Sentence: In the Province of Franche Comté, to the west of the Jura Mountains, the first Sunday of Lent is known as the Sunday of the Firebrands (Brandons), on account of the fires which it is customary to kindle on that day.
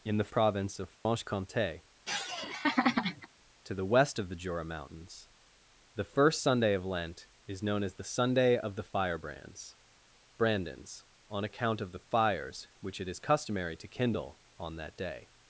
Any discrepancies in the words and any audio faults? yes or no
yes